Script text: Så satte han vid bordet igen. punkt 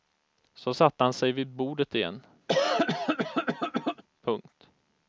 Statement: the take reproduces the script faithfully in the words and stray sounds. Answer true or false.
false